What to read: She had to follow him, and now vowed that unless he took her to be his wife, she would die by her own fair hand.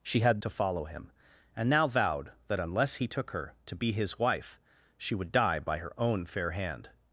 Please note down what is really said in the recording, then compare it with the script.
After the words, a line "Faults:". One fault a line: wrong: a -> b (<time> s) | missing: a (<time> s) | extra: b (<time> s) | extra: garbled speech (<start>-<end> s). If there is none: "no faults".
She had to follow him, and now vowed that unless he took her to be his wife, she would die by her own fair hand.
Faults:
no faults